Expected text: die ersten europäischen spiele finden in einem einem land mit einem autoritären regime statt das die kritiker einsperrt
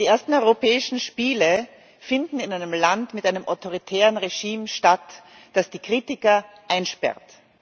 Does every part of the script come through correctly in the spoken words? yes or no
no